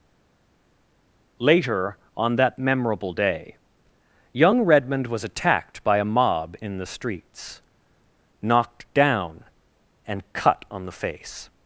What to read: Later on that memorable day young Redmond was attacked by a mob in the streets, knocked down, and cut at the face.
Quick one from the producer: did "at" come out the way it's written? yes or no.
no